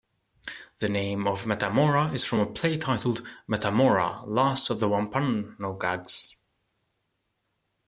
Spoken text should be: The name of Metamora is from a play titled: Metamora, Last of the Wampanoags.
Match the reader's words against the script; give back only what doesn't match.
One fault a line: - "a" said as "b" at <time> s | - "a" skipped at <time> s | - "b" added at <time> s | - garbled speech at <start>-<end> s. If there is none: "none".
none